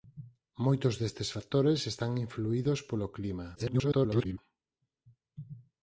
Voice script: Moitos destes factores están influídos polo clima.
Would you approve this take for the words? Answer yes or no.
no